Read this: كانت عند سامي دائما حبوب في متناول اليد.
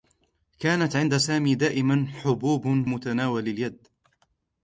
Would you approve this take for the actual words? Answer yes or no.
no